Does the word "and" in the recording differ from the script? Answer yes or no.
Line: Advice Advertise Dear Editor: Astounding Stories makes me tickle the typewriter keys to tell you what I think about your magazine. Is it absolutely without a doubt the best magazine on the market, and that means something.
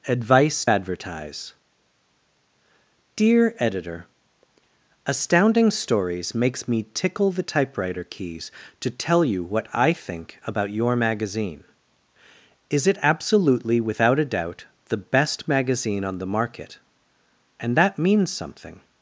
no